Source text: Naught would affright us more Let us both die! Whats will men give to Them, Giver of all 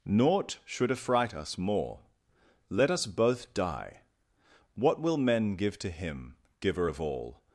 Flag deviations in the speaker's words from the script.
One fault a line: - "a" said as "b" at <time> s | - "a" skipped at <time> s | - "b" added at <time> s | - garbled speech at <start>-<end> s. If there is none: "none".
- "would" said as "should" at 0.7 s
- "Whats" said as "What" at 4.8 s
- "Them" said as "Him" at 5.9 s